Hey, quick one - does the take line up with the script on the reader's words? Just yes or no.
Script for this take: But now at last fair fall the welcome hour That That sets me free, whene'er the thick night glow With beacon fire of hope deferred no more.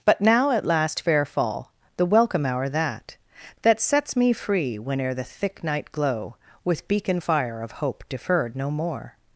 yes